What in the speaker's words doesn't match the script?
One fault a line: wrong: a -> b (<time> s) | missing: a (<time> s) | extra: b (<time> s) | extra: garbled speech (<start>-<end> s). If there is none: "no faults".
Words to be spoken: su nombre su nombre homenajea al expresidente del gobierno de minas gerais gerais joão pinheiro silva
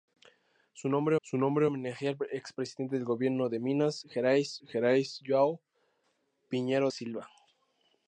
no faults